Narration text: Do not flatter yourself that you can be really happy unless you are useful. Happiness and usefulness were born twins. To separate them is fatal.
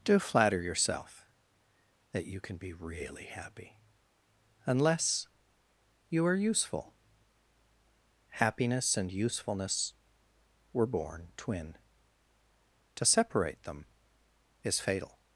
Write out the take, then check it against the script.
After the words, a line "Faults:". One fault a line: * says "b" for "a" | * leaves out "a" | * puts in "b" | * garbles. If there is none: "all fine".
Do flatter yourself that you can be really happy unless you are useful. Happiness and usefulness were born twin. To separate them is fatal.
Faults:
* leaves out "not"
* says "twin" for "twins"